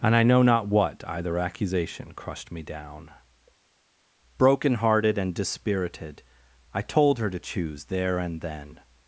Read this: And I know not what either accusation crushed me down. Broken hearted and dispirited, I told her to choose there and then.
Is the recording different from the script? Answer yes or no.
no